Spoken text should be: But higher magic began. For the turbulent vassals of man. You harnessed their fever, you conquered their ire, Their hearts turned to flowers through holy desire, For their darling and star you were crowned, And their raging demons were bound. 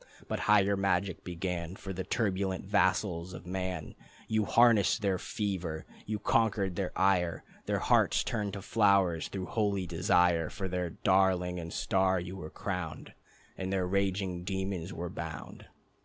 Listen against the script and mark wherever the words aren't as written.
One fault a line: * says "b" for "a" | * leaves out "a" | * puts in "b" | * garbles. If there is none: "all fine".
all fine